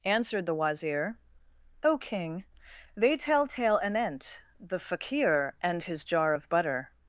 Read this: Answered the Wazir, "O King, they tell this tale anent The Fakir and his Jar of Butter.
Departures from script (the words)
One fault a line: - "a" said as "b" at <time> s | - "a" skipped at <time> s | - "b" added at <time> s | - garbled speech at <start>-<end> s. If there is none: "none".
- "this" skipped at 3.5 s